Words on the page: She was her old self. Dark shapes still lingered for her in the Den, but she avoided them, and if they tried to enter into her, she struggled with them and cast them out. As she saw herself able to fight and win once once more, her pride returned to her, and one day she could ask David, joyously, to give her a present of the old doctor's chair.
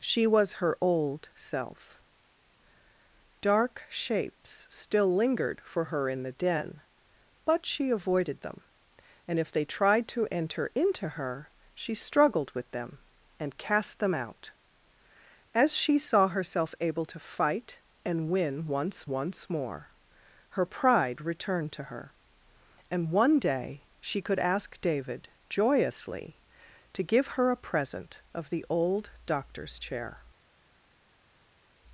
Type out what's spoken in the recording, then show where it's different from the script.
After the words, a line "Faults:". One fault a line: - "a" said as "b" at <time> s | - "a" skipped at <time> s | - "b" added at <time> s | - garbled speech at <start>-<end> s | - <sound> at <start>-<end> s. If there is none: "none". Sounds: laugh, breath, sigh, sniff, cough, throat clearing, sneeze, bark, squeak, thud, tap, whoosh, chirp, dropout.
She was her old self. Dark shapes still lingered for her in the Den, but she avoided them, and if they tried to enter into her, she struggled with them and cast them out. As she saw herself able to fight and win once once more, her pride returned to her, and one day she could ask David, joyously, to give her a present of the old doctor's chair.
Faults:
none